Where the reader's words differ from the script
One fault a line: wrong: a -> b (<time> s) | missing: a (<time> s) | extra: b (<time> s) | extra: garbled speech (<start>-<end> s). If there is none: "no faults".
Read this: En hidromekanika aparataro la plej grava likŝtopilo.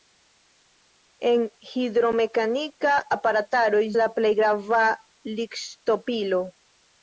no faults